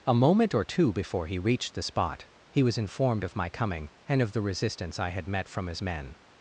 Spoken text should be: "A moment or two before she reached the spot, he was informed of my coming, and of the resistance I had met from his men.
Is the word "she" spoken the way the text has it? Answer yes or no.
no